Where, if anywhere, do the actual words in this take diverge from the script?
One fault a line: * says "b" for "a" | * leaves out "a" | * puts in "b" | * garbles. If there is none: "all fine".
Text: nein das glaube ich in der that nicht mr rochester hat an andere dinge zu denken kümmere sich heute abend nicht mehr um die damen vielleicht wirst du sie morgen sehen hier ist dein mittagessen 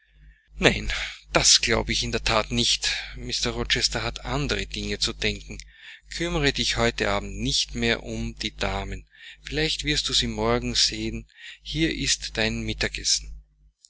* says "dich" for "sich"